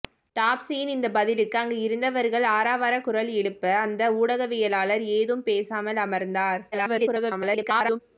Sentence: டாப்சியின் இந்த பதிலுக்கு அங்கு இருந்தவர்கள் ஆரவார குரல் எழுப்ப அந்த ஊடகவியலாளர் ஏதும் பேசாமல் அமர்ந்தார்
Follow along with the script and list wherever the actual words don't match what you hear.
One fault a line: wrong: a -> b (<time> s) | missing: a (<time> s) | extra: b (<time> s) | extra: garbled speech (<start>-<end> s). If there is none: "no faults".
extra: garbled speech (6.7-8.0 s)